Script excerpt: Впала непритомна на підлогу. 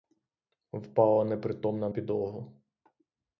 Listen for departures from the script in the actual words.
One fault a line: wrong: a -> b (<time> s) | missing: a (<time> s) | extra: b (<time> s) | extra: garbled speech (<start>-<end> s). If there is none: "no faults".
missing: на (1.9 s)